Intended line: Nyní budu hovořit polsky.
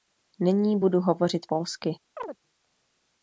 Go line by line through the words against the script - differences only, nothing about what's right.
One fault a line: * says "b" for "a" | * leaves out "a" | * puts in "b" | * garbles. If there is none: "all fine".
all fine